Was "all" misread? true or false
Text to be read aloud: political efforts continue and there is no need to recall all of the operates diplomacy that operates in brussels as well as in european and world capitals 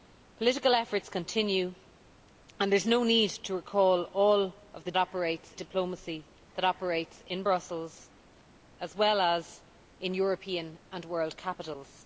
false